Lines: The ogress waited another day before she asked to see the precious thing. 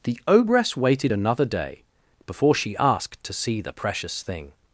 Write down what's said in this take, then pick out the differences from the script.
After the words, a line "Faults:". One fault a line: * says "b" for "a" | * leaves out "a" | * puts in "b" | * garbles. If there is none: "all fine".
The ogress waited another day before she asked to see the precious thing.
Faults:
all fine